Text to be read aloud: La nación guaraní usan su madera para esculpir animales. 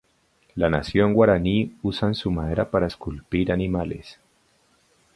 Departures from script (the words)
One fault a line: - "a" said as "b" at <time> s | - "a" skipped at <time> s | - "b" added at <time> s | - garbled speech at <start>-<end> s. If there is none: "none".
none